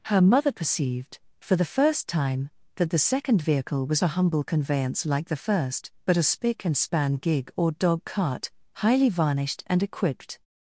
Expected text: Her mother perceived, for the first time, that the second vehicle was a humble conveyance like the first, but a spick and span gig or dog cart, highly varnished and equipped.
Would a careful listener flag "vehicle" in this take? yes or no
no